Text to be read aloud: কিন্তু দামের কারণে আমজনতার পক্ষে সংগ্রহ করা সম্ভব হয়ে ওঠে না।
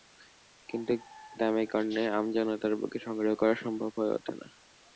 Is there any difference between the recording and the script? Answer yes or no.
no